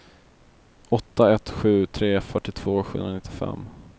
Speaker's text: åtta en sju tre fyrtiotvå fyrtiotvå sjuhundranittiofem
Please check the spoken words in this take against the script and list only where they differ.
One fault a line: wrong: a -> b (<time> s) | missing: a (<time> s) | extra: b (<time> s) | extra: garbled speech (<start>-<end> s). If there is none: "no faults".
wrong: en -> ett (1.3 s)
missing: fyrtiotvå (2.8 s)